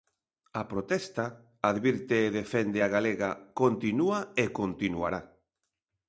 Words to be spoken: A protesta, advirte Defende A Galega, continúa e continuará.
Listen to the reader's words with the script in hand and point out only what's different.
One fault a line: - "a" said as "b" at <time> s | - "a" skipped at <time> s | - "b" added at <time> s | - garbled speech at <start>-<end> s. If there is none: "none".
none